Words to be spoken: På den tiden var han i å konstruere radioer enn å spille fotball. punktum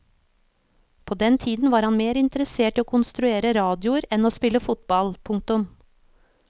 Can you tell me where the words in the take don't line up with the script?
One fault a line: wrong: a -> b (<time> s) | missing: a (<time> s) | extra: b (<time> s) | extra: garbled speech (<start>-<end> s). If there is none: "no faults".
extra: mer interessert (2.0 s)